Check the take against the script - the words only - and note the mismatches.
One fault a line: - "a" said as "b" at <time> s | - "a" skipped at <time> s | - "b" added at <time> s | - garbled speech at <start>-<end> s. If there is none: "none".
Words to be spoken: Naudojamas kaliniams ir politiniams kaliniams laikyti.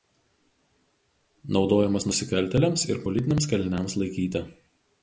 - "kaliniams" said as "nusikaltėliams" at 2.1 s